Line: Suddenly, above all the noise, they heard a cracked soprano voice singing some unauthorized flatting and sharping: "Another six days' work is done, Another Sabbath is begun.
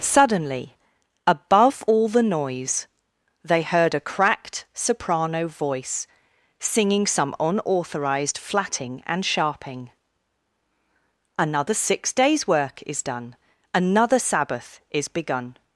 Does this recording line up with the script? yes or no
yes